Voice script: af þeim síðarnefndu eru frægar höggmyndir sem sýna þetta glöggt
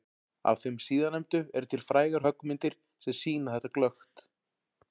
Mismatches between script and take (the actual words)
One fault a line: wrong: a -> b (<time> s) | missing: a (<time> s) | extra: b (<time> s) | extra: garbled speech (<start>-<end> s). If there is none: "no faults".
extra: til (1.7 s)